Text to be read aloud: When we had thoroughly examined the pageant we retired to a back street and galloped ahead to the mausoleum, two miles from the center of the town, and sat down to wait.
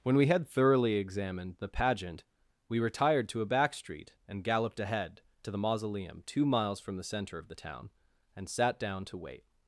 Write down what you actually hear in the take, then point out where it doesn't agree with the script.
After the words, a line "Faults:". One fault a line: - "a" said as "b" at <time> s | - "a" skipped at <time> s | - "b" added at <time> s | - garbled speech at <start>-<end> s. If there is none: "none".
When we had thoroughly examined the pageant we retired to a back street and galloped ahead to the mausoleum, two miles from the center of the town, and sat down to wait.
Faults:
none